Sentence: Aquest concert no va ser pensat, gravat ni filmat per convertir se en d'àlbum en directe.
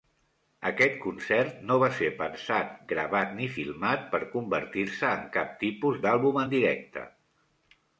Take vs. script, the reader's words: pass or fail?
fail